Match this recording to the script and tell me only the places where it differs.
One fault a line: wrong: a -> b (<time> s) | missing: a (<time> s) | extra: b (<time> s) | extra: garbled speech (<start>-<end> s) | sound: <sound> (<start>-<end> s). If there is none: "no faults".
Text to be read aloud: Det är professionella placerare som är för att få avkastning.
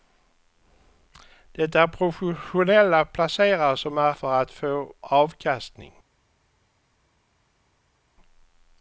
no faults